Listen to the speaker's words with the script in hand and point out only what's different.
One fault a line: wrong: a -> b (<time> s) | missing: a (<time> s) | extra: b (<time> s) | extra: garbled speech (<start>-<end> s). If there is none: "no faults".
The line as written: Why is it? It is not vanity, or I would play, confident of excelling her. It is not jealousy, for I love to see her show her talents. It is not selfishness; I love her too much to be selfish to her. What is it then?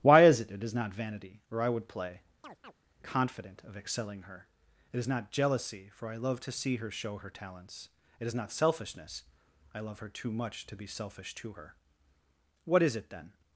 no faults